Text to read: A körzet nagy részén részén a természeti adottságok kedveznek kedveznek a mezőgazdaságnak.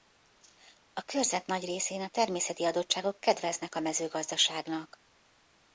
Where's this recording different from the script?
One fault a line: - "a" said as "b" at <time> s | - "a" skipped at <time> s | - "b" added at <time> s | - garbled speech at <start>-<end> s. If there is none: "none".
- "részén" skipped at 2.0 s
- "kedveznek" skipped at 3.8 s